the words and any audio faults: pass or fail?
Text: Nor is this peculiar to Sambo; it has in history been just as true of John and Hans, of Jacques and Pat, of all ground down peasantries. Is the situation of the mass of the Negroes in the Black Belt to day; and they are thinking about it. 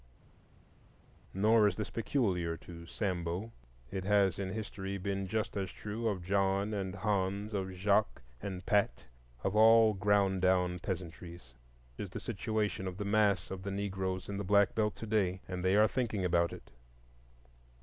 pass